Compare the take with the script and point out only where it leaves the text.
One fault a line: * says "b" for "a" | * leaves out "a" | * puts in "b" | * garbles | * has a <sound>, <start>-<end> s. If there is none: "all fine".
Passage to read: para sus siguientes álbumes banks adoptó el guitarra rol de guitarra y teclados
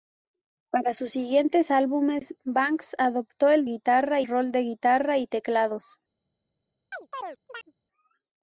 * has a chirp, 6.9-7.7 s